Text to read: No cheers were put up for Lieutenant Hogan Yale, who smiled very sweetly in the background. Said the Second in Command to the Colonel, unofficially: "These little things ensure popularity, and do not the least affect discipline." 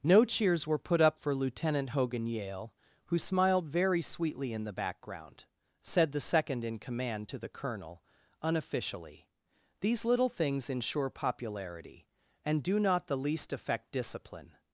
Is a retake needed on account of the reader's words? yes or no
no